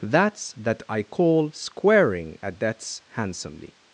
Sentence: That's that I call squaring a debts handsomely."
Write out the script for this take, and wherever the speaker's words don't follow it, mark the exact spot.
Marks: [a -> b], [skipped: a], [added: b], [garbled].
That's that I call squaring a debts handsomely."